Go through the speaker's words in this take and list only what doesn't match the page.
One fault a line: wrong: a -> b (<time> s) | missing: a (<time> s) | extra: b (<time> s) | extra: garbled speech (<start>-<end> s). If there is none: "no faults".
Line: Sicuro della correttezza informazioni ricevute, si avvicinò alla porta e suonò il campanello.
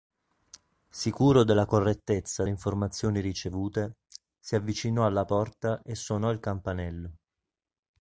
no faults